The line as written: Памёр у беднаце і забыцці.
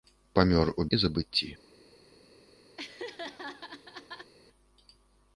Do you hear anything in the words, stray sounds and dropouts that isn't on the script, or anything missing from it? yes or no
yes